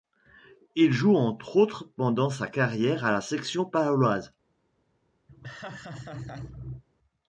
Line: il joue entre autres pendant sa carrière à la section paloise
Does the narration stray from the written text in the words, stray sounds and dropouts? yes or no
yes